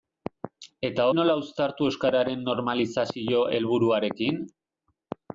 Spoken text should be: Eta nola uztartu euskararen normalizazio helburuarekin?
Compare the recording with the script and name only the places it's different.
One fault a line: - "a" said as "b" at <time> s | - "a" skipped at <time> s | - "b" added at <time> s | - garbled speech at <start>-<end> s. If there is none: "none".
none